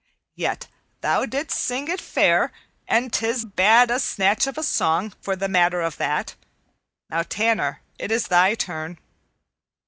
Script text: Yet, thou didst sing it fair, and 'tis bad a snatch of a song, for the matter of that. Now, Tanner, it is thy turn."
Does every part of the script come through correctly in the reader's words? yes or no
yes